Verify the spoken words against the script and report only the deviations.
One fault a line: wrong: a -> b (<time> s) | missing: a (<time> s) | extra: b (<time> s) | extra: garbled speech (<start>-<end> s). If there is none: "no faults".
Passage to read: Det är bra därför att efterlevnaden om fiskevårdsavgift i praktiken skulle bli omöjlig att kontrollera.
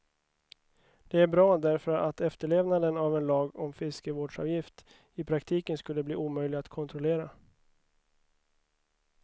extra: av en lag (3.0 s)